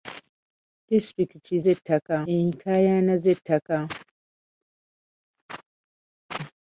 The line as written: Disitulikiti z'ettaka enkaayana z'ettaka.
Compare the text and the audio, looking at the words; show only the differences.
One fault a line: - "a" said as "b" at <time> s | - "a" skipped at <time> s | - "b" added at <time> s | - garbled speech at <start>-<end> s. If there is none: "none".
none